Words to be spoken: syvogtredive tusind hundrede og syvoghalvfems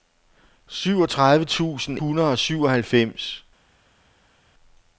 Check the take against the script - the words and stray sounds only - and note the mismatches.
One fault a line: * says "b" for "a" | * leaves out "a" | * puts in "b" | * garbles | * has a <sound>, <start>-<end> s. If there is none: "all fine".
all fine